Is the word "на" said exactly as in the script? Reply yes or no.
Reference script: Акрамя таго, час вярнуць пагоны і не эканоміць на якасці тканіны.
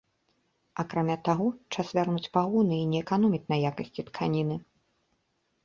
yes